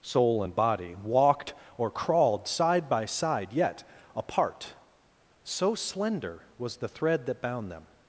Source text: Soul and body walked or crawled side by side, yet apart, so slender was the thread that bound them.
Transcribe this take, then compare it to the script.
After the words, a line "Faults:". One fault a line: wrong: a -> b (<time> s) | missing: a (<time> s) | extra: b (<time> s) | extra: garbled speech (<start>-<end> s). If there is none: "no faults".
Soul and body walked or crawled side by side, yet apart, so slender was the thread that bound them.
Faults:
no faults